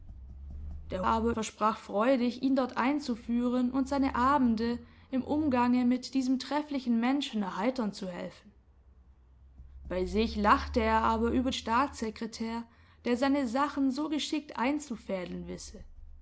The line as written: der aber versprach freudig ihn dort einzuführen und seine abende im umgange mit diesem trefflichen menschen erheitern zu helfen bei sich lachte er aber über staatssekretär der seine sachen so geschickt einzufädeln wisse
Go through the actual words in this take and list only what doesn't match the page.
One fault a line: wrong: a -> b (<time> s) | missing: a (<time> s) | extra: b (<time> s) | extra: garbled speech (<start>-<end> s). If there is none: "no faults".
no faults